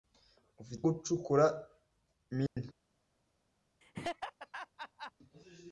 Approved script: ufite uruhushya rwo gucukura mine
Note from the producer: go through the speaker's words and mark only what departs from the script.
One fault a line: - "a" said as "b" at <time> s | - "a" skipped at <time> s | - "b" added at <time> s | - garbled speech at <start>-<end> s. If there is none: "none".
- "uruhushya rwo" skipped at 0.8 s